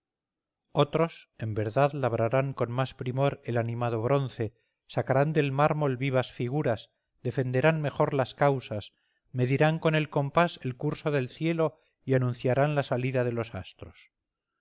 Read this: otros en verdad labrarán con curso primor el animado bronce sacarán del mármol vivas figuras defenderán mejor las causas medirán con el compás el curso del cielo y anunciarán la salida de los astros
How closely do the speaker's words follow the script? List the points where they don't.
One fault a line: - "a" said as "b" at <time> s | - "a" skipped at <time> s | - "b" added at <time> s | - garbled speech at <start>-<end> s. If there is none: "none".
- "curso" said as "más" at 2.7 s